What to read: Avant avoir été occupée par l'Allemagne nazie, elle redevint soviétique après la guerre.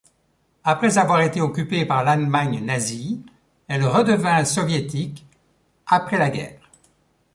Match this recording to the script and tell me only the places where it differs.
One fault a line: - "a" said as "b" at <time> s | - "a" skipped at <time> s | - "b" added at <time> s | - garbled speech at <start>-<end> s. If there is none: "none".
- "Avant" said as "Après" at 0.6 s